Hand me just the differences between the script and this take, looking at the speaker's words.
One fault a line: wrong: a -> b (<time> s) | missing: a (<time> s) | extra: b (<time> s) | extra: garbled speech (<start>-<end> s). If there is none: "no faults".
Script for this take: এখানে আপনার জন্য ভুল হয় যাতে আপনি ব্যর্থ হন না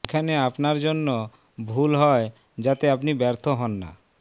no faults